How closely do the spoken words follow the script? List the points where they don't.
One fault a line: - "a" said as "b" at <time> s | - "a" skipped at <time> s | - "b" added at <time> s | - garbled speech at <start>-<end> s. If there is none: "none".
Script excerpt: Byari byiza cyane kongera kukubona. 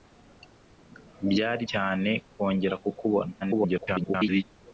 - "byiza" skipped at 1.6 s
- garbled speech at 3.4-4.4 s